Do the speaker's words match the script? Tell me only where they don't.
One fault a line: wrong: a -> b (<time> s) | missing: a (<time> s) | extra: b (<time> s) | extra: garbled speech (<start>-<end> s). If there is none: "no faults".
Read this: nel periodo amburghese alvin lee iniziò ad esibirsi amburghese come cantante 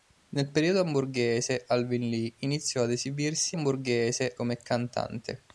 no faults